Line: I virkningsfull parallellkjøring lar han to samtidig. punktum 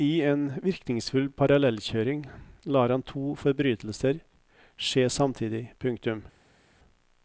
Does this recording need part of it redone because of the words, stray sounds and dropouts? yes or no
yes